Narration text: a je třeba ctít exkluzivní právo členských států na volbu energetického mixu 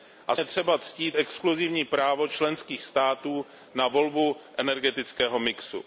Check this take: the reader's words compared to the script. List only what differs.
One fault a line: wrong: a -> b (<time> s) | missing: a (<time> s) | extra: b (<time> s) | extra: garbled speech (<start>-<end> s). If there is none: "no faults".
no faults